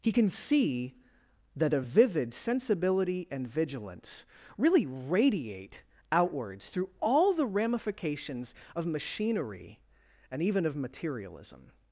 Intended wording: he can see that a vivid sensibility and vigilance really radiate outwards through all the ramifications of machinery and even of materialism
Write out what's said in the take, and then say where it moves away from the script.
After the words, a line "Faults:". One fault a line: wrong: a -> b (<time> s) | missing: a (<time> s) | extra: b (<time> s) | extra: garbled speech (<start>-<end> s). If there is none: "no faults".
he can see that a vivid sensibility and vigilance really radiate outwards through all the ramifications of machinery and even of materialism
Faults:
no faults